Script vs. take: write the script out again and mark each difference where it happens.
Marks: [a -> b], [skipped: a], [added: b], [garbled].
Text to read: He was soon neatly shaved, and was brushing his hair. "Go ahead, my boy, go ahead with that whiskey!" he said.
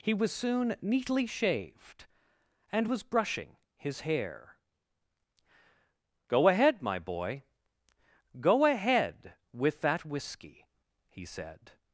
He was soon neatly shaved, and was brushing his hair. "Go ahead, my boy, go ahead with that whiskey!" he said.